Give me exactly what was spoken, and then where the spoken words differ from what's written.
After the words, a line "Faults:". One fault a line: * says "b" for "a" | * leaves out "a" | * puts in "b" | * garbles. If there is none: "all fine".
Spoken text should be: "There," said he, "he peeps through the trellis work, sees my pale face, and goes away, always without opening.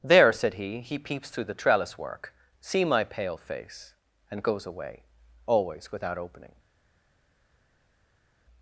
"There," said he, "he peeps through the trellis work, see my pale face, and goes away, always without opening.
Faults:
* says "see" for "sees"